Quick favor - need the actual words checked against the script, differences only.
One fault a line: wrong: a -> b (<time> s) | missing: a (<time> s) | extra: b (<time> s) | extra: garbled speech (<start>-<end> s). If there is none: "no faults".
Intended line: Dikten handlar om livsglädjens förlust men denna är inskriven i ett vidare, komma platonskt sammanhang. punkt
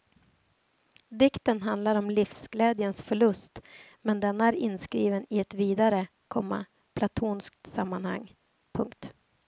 no faults